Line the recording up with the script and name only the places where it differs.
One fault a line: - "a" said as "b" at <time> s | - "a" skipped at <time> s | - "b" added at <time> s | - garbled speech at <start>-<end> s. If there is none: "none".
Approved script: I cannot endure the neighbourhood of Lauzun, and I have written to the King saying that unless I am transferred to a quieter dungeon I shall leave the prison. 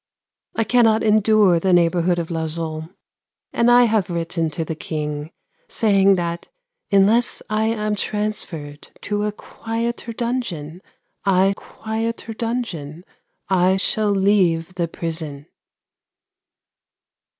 - "quieter dungeon I" added at 11.5 s